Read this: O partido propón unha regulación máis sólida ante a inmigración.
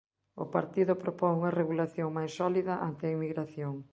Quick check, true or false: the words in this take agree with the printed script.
true